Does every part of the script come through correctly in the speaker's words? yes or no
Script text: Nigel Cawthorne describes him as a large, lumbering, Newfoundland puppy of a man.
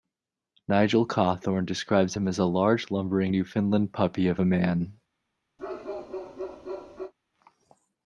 yes